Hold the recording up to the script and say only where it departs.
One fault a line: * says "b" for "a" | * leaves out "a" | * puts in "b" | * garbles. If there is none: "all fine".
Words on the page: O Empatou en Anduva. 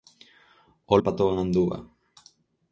all fine